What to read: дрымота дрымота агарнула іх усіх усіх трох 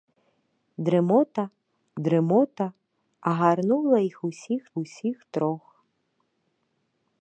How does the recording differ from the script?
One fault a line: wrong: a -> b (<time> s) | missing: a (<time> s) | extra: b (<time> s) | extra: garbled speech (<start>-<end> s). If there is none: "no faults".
no faults